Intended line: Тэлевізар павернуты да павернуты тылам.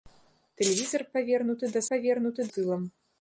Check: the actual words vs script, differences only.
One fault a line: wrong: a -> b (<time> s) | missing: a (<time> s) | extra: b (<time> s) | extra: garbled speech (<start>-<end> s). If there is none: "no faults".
no faults